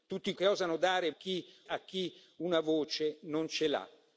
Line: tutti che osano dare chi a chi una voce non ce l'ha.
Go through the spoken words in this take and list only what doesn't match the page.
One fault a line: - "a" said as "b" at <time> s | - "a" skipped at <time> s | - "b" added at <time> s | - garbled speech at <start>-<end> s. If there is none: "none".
none